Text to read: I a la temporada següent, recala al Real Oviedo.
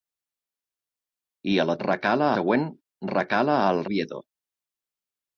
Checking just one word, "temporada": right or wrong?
wrong